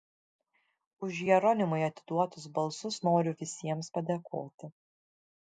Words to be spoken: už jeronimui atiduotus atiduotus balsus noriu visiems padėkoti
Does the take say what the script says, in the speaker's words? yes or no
no